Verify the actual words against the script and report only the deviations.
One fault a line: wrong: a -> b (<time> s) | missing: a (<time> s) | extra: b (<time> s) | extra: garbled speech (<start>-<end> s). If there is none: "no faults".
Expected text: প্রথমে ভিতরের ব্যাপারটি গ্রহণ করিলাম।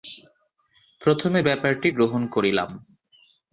missing: ভিতরের (1.4 s)